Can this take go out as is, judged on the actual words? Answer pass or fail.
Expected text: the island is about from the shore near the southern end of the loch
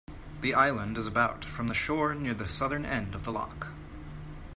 pass